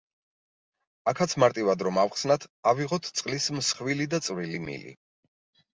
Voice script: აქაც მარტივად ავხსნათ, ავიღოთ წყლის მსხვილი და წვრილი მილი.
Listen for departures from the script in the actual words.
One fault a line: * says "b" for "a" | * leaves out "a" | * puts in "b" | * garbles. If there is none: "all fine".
* puts in "რომ"